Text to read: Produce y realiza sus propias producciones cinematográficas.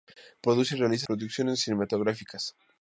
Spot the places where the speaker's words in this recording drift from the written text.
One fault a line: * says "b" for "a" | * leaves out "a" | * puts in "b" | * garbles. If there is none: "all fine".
* leaves out "sus propias"